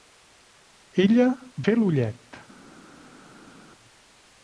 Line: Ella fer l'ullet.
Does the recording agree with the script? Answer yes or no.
yes